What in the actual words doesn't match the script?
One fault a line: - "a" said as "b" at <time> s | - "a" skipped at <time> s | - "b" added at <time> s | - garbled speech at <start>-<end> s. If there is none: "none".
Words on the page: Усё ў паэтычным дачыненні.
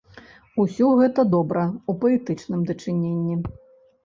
- "гэта добра" added at 1.0 s